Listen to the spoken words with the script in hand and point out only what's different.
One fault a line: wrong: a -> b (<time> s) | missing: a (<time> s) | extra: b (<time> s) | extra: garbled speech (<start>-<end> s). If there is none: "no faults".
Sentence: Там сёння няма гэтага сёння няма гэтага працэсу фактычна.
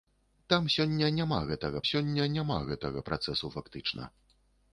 no faults